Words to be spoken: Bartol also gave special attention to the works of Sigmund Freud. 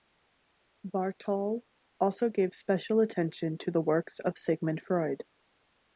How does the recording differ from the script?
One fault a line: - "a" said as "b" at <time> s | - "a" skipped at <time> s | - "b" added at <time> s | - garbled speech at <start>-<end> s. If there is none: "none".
none